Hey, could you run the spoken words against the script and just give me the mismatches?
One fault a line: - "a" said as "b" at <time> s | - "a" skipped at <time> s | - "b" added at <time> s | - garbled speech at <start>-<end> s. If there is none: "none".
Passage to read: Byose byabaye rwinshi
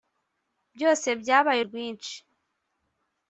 none